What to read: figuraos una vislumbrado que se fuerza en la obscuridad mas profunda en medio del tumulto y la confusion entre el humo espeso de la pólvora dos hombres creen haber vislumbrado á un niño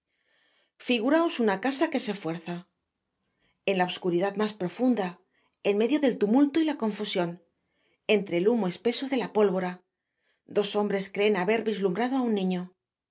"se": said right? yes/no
yes